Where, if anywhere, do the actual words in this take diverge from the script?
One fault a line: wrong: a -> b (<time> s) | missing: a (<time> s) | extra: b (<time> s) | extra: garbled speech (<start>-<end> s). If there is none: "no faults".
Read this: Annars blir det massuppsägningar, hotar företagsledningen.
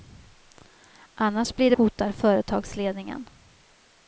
missing: massuppsägningar (1.8 s)